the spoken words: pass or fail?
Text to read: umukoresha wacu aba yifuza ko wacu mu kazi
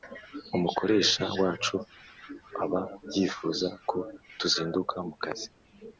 fail